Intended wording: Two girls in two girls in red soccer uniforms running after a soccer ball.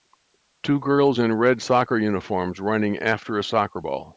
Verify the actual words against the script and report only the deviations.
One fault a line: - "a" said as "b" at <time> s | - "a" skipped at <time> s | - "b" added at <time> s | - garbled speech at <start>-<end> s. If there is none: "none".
- "two girls in" skipped at 1.3 s